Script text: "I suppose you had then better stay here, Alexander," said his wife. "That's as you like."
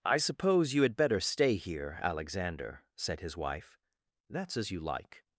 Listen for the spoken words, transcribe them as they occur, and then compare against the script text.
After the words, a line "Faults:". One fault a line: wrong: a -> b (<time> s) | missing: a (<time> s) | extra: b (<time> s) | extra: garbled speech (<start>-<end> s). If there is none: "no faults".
"I suppose you had better stay here, Alexander," said his wife. "That's as you like."
Faults:
missing: then (0.9 s)